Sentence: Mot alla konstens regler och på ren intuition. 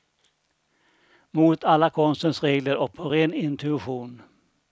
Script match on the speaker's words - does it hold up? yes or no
yes